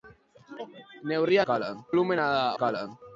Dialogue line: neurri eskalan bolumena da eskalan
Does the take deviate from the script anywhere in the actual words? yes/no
no